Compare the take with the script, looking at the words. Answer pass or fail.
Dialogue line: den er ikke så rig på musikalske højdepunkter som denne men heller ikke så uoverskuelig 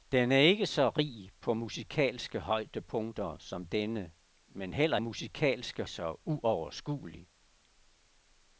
fail